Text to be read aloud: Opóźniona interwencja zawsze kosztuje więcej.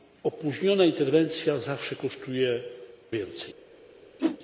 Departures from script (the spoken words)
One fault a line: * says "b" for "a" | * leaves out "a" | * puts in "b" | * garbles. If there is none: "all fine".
all fine